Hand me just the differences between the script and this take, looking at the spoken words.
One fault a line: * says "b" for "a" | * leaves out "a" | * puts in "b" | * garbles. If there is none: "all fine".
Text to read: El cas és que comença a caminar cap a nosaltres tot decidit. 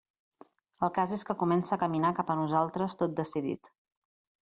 all fine